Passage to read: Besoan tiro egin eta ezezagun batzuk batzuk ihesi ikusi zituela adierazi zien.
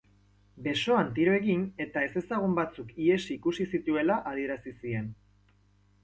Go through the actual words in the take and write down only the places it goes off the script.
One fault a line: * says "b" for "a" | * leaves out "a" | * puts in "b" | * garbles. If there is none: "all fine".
* leaves out "batzuk"